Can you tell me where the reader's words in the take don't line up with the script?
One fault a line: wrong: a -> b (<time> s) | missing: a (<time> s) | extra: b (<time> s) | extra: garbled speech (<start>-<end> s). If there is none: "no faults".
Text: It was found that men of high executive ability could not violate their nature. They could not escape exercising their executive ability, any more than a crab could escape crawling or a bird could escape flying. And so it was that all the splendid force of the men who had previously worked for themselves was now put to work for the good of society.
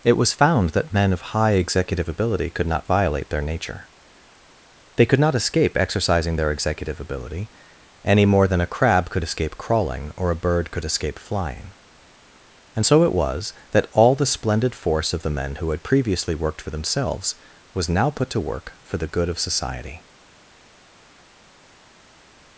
no faults